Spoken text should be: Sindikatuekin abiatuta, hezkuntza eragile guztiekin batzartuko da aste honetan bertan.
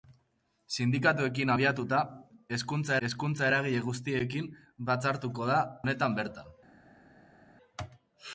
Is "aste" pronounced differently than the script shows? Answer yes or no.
yes